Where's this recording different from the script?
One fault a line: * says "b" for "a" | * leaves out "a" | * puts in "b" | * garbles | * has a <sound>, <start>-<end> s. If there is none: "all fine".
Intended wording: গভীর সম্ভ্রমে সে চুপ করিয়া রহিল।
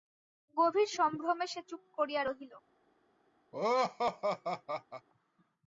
* has a laugh, 3.5-5.1 s